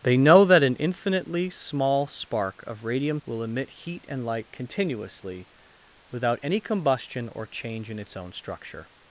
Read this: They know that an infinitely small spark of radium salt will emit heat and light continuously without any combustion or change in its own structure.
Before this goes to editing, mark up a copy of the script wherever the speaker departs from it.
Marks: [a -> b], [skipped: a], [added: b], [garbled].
They know that an infinitely small spark of radium [skipped: salt] will emit heat and light continuously without any combustion or change in its own structure.